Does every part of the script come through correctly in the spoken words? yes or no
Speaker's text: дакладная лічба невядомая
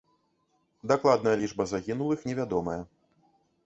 no